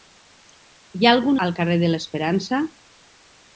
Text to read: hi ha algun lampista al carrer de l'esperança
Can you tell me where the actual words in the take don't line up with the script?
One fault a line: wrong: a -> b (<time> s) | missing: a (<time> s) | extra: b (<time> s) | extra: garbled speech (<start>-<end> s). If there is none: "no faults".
missing: lampista (1.4 s)